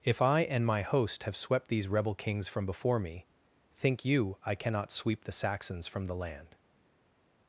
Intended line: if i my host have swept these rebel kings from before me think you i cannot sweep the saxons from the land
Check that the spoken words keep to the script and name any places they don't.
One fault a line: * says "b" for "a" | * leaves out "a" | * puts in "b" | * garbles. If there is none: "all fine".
* puts in "and"